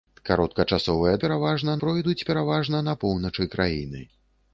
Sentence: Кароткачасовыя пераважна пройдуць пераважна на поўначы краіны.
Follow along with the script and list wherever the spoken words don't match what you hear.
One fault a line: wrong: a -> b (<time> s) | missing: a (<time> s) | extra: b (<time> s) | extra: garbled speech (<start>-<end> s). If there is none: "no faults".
no faults